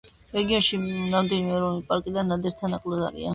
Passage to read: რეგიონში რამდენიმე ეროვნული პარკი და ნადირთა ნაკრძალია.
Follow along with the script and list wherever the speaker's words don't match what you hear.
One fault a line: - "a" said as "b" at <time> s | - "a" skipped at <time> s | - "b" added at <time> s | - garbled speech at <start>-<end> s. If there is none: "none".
none